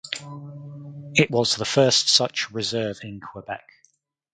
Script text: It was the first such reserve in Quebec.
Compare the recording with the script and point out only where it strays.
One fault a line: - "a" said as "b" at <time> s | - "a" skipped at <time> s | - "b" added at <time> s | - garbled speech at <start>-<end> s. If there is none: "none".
none